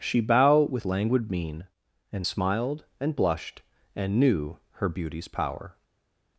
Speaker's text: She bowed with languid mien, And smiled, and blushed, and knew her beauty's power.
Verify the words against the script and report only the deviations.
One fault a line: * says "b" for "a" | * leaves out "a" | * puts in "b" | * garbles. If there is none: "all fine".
* says "bow" for "bowed"